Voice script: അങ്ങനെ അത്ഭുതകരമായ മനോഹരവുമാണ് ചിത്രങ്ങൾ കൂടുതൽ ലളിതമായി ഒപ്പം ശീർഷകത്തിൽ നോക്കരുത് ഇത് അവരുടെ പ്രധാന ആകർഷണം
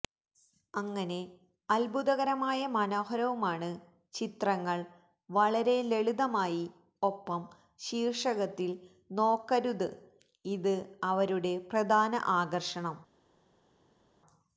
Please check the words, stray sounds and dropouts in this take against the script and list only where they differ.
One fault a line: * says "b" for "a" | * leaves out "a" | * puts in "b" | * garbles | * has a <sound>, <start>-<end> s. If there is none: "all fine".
* says "വളരെ" for "കൂടുതൽ"